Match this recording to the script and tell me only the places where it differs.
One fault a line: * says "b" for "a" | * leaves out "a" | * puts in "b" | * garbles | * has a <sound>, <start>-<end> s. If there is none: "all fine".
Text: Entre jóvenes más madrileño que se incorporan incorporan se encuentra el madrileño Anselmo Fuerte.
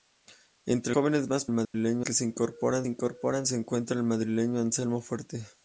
* has a dropout, 1.6-1.7 s